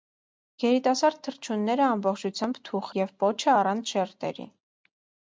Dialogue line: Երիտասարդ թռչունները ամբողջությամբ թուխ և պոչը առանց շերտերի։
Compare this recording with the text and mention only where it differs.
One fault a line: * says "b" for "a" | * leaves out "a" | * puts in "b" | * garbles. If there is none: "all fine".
all fine